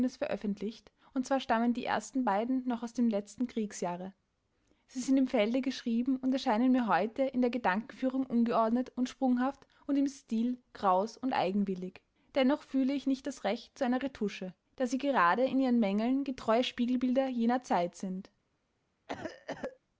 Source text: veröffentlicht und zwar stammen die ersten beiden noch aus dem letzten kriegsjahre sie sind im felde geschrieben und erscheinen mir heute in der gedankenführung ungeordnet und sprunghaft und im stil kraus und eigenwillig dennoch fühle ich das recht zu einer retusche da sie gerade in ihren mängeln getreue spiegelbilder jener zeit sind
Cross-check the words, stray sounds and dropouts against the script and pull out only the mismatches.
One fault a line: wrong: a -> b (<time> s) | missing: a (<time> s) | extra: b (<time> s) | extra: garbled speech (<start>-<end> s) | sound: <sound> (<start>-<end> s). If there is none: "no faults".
extra: nicht (13.1 s)
sound: cough (19.1-19.8 s)